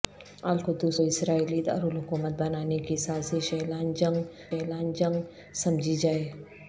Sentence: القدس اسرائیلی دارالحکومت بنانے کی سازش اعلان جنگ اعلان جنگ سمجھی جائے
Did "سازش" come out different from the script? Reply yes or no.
no